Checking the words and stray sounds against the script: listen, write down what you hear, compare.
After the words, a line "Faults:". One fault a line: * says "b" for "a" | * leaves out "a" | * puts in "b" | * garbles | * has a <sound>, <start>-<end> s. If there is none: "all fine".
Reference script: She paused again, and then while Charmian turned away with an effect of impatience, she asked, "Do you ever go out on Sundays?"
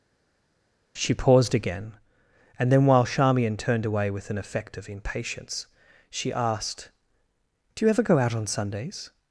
She paused again, and then while Charmian turned away with an effect of impatience, she asked, "Do you ever go out on Sundays?"
Faults:
all fine